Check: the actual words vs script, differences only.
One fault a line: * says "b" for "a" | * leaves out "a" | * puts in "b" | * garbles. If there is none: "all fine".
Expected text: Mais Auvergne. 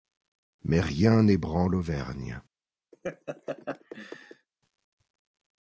* puts in "rien n'ébranle"